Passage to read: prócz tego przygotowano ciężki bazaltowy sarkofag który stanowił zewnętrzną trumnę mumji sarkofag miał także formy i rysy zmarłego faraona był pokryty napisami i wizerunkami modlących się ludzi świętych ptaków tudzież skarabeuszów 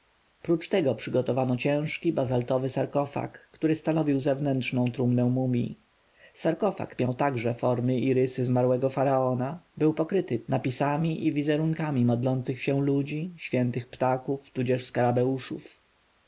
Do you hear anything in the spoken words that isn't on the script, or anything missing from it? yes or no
no